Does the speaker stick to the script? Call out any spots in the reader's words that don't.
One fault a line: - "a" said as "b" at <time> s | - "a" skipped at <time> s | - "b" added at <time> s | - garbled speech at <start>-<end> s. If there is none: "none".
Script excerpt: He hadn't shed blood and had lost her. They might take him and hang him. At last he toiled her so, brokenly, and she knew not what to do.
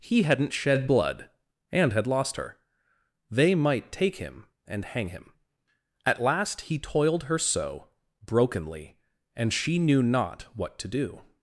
none